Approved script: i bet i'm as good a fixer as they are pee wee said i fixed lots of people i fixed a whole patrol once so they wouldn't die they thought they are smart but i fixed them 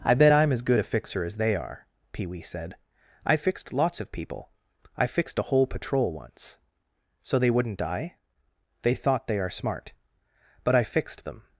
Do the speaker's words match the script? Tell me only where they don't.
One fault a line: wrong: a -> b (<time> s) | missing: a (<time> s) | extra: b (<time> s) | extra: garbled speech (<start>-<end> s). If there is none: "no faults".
no faults